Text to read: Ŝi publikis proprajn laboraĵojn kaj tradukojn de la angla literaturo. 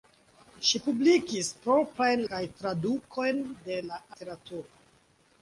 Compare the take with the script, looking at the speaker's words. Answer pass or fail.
fail